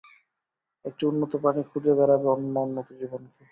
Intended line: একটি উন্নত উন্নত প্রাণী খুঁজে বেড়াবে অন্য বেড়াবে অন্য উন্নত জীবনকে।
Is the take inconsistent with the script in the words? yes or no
yes